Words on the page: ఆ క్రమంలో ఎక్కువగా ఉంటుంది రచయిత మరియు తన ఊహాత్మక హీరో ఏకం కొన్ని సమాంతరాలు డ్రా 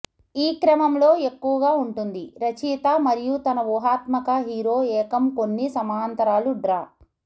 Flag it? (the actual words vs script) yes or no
yes